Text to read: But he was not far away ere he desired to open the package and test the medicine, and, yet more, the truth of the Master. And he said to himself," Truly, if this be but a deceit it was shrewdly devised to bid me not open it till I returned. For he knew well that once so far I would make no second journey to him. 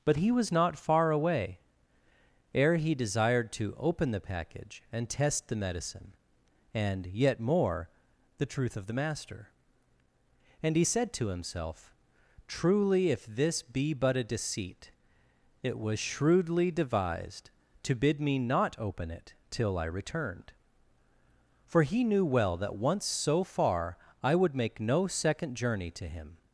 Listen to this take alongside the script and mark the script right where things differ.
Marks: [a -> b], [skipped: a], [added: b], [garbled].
But he was not far away ere he desired to open the package and test the medicine, and, yet more, the truth of the Master. And he said to himself," Truly, if this be but a deceit it was shrewdly devised to bid me not open it till I returned. For he knew well that once so far I would make no second journey to him.